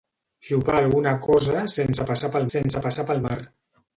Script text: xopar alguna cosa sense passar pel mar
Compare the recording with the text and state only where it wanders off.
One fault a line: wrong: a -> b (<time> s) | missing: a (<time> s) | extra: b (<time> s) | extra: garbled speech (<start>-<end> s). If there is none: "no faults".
extra: sense passar pel (2.5 s)